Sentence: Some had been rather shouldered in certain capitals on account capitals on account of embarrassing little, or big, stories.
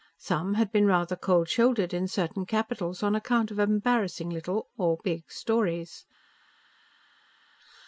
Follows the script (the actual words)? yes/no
no